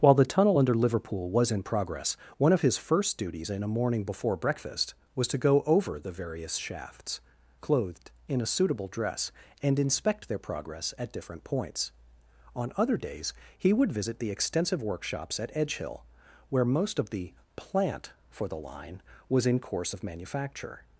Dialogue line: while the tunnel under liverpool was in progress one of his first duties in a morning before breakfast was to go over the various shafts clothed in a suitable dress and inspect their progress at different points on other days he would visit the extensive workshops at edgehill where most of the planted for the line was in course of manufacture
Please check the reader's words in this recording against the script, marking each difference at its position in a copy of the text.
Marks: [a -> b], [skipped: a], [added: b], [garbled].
while the tunnel under liverpool was in progress one of his first duties in a morning before breakfast was to go over the various shafts clothed in a suitable dress and inspect their progress at different points on other days he would visit the extensive workshops at edgehill where most of the [planted -> plant] for the line was in course of manufacture